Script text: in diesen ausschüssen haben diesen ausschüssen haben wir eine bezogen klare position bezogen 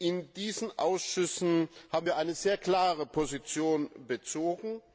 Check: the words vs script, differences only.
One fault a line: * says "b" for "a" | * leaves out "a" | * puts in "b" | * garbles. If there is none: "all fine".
* leaves out "diesen ausschüssen haben"
* says "sehr" for "bezogen"